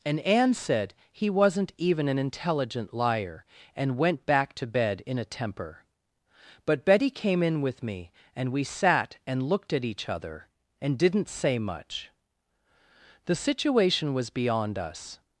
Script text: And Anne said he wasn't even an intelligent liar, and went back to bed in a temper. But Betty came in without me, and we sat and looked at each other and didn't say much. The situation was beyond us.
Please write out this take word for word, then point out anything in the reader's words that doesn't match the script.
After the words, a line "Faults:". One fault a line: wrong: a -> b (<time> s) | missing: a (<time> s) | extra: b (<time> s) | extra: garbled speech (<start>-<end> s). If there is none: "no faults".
And Anne said he wasn't even an intelligent liar, and went back to bed in a temper. But Betty came in with me, and we sat and looked at each other and didn't say much. The situation was beyond us.
Faults:
wrong: without -> with (7.6 s)